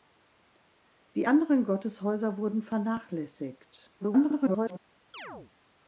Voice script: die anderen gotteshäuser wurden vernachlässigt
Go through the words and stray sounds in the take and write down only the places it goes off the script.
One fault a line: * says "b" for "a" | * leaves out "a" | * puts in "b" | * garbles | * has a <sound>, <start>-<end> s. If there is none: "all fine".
* garbles
* has a chirp, 5.1-5.5 s